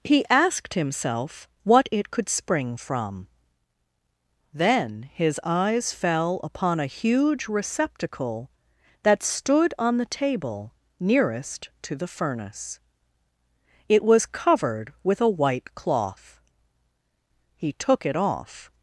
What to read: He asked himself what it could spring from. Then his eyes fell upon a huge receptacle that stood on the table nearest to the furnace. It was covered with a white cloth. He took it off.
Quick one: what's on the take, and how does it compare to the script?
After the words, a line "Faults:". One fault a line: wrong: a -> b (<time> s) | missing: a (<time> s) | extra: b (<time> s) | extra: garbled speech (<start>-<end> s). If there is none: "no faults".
He asked himself what it could spring from. Then his eyes fell upon a huge receptacle that stood on the table nearest to the furnace. It was covered with a white cloth. He took it off.
Faults:
no faults